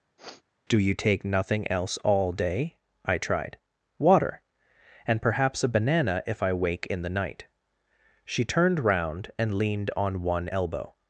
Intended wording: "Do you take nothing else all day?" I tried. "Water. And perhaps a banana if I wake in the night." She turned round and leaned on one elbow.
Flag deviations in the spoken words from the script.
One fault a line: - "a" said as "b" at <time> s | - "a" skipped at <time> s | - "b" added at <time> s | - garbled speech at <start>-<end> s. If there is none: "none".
none